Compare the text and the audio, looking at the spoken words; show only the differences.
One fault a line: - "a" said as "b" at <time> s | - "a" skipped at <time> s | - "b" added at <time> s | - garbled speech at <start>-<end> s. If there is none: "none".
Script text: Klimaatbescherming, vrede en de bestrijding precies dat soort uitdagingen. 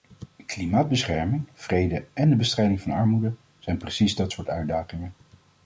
- "van armoede zijn" added at 2.8 s